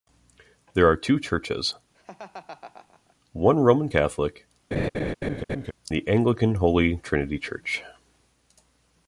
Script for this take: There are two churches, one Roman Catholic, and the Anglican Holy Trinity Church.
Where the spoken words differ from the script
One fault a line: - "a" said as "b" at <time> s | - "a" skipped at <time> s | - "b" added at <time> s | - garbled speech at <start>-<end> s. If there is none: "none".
- "and" skipped at 4.5 s